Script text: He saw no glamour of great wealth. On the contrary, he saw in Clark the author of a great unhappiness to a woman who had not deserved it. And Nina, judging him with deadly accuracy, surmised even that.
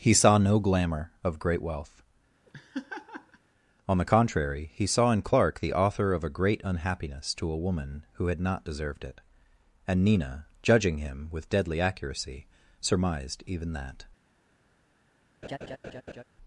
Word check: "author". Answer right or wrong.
right